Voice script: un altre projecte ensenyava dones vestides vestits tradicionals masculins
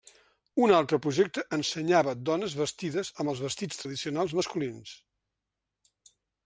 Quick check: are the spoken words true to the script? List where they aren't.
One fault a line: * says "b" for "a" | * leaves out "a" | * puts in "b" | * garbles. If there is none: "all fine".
* puts in "amb els"